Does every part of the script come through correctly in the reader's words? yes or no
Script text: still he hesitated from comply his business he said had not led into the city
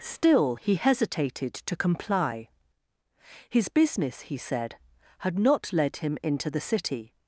no